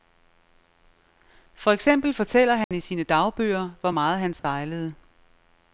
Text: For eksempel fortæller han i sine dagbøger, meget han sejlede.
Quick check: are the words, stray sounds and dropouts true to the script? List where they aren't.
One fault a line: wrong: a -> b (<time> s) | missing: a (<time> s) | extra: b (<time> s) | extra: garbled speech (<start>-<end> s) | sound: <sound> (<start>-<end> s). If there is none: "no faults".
sound: dropout (2.6-2.7 s)
extra: hvor (3.8 s)
sound: dropout (4.4-4.4 s)